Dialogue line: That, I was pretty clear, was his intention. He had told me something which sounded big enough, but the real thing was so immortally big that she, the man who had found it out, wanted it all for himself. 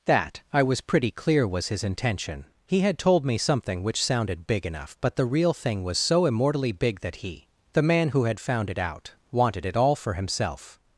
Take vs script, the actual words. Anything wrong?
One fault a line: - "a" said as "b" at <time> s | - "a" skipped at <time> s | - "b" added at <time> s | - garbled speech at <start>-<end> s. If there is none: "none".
- "she" said as "he" at 7.2 s